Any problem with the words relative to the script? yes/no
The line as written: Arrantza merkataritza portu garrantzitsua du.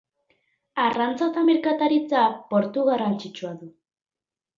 yes